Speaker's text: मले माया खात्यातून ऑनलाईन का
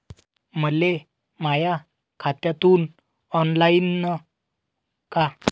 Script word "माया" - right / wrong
right